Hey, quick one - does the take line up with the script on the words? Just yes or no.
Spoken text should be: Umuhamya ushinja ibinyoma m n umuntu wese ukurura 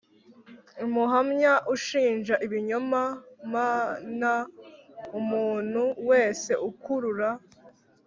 yes